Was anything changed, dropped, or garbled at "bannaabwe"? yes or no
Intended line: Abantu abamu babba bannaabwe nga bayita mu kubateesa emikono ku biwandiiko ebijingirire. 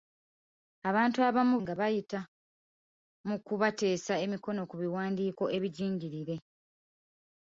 yes